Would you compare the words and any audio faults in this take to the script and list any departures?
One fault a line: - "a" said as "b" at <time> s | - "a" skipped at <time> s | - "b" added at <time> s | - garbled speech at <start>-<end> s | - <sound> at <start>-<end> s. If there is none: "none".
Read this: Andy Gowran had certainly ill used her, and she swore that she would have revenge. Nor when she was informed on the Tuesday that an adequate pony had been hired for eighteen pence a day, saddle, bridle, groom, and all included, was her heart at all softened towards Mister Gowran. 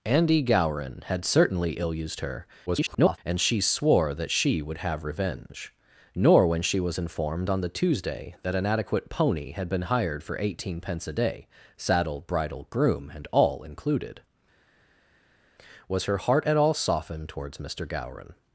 - garbled speech at 2.7-3.2 s